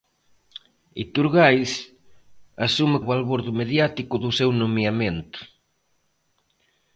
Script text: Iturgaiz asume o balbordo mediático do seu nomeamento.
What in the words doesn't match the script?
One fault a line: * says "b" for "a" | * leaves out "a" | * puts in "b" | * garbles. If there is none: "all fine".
all fine